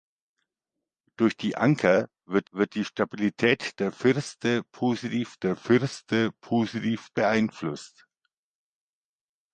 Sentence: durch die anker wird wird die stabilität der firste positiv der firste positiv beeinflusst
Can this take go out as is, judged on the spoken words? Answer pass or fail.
pass